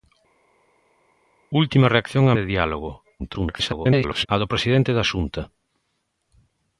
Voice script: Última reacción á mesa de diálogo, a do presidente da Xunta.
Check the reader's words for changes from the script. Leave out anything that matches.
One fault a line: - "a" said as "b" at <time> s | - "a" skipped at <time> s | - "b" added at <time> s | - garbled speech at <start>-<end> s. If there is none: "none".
- "mesa" skipped at 2.3 s
- garbled speech at 3.2-4.3 s